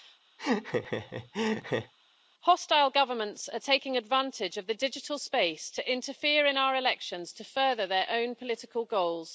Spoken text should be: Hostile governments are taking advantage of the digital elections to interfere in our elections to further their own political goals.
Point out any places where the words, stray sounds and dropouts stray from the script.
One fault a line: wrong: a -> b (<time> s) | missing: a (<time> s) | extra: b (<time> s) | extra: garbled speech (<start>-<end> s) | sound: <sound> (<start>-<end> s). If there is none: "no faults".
sound: laugh (0.4-1.9 s)
wrong: elections -> space (5.2 s)